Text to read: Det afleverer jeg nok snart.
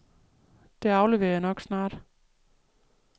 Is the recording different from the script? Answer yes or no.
no